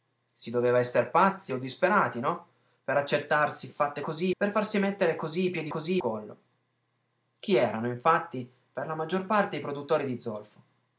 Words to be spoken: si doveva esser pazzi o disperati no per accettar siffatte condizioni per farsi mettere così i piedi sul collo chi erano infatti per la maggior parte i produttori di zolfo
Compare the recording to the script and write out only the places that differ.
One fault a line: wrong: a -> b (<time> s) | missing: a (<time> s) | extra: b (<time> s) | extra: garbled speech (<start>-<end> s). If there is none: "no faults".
wrong: condizioni -> così (4.0 s)
wrong: sul -> così (5.7 s)